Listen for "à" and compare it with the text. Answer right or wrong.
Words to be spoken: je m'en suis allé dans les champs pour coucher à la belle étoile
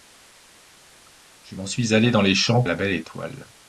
wrong